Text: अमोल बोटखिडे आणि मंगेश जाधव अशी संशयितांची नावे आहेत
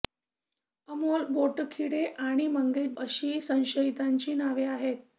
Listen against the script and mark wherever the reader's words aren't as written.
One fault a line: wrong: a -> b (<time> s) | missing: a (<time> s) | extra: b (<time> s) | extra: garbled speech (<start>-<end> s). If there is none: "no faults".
missing: जाधव (2.9 s)